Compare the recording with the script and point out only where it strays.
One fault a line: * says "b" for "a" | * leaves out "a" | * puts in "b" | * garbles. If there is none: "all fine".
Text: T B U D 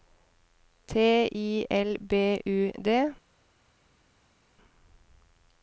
* puts in "I L"